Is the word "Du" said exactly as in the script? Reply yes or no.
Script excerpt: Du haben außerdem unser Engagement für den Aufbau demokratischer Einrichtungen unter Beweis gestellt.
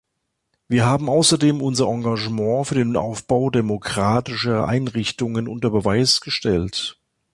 no